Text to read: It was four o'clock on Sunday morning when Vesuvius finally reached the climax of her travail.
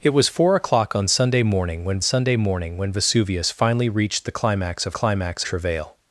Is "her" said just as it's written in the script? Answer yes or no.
no